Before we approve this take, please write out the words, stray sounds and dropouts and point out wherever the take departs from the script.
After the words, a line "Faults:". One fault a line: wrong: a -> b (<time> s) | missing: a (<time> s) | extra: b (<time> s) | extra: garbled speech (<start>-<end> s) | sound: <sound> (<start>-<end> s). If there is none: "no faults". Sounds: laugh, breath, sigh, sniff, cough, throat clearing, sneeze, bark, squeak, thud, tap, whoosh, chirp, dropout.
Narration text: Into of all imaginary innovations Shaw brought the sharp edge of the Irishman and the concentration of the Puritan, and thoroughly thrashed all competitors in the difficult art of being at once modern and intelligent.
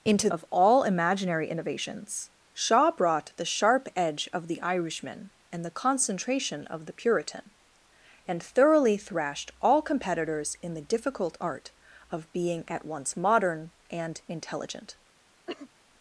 Into of all imaginary innovations Shaw brought the sharp edge of the Irishman and the concentration of the Puritan, and thoroughly thrashed all competitors in the difficult art of being at once modern and intelligent.
Faults:
sound: cough (15.5-15.7 s)